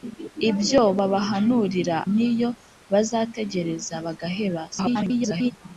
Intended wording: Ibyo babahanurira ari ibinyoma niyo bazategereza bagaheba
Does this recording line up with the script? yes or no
no